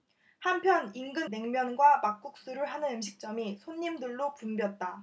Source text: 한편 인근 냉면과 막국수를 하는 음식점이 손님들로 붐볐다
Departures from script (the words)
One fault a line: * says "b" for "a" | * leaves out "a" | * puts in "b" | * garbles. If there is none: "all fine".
all fine